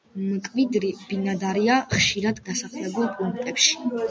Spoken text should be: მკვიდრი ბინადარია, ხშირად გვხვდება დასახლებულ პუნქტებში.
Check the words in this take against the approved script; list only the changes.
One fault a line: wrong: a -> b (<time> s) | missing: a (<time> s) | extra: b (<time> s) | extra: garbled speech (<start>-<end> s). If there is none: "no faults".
missing: გვხვდება (2.4 s)